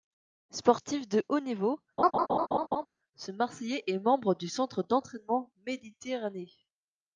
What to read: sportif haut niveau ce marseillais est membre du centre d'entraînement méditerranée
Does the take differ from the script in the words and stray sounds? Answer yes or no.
yes